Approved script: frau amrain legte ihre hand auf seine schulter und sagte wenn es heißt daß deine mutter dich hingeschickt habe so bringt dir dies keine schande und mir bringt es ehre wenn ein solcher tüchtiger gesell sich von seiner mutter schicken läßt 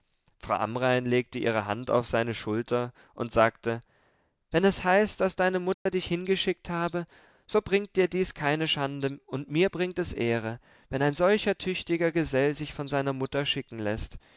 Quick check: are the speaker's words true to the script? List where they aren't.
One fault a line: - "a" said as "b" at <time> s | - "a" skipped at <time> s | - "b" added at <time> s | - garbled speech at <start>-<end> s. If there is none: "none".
none